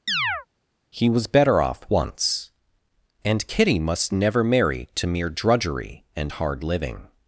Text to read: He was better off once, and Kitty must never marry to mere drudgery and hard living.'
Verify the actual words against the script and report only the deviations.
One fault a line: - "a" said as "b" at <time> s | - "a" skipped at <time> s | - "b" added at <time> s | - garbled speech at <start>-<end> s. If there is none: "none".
none